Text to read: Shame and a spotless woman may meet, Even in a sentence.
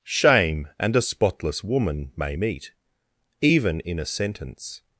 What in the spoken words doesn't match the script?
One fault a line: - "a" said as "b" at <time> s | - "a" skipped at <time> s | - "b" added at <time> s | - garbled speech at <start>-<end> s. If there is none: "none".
none